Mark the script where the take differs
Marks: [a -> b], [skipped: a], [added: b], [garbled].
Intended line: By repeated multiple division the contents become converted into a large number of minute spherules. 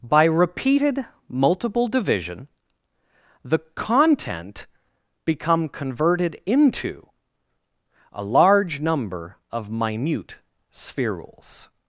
By repeated multiple division the [contents -> content] become converted into a large number of minute spherules.